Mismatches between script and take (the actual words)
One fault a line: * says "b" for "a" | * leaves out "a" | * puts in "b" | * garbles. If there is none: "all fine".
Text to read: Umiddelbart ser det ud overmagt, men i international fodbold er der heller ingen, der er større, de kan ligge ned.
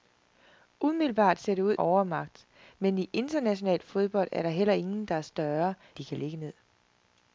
all fine